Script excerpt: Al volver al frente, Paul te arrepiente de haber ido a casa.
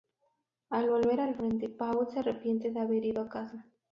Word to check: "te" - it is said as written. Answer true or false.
false